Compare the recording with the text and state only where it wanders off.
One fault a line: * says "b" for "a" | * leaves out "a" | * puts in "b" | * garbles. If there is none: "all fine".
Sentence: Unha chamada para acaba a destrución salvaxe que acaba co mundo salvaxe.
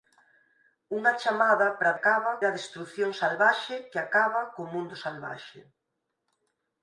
all fine